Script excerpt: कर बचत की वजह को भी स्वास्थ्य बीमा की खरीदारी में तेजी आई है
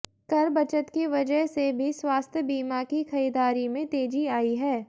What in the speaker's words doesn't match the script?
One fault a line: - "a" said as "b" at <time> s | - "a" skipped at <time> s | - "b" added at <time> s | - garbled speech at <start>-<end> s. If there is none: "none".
- "को" said as "से" at 1.5 s